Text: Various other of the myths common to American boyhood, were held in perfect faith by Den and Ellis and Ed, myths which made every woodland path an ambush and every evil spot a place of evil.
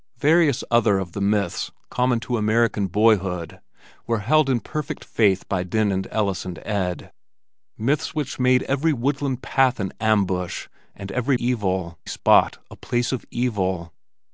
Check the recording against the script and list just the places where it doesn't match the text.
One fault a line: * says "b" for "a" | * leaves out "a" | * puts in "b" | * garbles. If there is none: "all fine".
all fine